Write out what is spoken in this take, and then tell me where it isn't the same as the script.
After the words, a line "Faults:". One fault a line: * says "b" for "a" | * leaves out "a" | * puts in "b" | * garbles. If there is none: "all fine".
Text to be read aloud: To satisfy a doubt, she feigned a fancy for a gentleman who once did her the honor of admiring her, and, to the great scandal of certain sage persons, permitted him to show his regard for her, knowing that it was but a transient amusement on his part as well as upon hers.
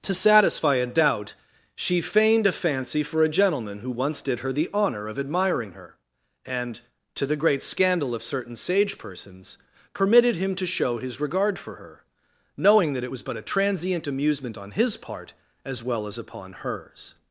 To satisfy a doubt, she feigned a fancy for a gentleman who once did her the honor of admiring her, and, to the great scandal of certain sage persons, permitted him to show his regard for her, knowing that it was but a transient amusement on his part as well as upon hers.
Faults:
all fine